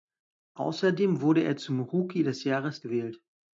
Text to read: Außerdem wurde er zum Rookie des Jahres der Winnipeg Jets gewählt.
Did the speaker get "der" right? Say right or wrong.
wrong